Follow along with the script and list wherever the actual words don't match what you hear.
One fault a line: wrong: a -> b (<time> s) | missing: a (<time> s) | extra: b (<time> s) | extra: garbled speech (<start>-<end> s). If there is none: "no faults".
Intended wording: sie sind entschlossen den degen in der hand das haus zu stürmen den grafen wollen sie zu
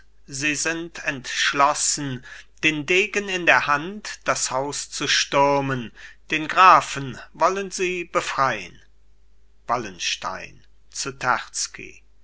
extra: befrein wallenstein (8.0 s)